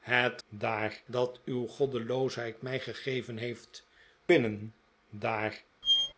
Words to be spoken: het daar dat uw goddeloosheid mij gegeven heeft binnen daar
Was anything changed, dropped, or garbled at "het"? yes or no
no